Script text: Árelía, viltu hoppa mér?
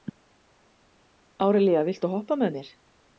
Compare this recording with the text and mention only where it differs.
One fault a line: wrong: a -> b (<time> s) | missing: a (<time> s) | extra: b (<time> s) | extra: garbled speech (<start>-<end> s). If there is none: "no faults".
extra: með (2.4 s)